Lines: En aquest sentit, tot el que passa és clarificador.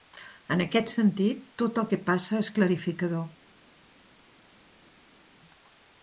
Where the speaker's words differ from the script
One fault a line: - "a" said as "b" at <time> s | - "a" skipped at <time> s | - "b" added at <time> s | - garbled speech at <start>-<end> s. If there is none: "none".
none